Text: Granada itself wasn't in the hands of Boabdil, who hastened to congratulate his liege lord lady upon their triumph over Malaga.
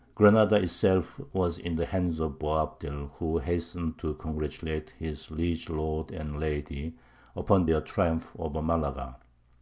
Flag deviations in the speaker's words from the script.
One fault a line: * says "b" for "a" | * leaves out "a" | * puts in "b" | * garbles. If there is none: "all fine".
* says "was" for "wasn't"
* puts in "and"